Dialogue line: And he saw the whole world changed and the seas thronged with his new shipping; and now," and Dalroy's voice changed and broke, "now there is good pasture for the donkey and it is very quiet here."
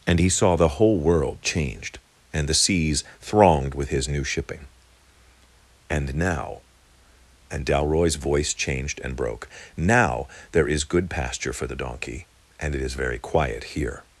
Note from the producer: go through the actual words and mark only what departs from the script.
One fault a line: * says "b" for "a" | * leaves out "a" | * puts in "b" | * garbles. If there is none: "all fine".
all fine